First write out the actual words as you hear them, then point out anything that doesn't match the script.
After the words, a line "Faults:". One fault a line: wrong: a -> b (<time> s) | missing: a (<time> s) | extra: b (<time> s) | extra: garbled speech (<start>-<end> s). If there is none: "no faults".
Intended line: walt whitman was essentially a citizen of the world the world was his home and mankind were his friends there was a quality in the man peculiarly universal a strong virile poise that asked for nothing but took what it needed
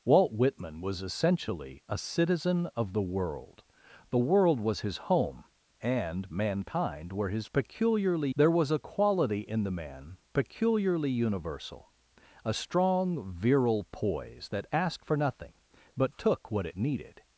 walt whitman was essentially a citizen of the world the world was his home and mankind were his peculiarly there was a quality in the man peculiarly universal a strong virile poise that asked for nothing but took what it needed
Faults:
wrong: friends -> peculiarly (7.5 s)